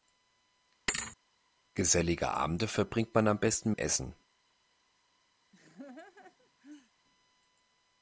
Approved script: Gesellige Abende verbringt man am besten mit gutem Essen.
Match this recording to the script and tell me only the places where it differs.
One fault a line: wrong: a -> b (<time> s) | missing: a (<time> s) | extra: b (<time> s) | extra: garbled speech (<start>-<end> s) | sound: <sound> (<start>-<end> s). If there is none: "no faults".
sound: thud (0.9-1.2 s)
missing: mit gutem (3.7 s)
sound: laugh (5.5-6.9 s)